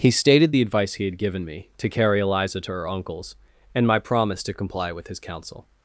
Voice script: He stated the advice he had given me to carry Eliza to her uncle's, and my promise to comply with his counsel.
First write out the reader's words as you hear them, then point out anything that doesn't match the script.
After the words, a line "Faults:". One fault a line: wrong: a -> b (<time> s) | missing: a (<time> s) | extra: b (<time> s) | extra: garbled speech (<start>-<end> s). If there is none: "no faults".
He stated the advice he had given me to carry Eliza to her uncle's, and my promise to comply with his counsel.
Faults:
no faults